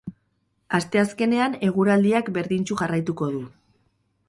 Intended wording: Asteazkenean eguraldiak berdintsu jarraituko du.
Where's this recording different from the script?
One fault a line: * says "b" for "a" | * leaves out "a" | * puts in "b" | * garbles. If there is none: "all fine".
all fine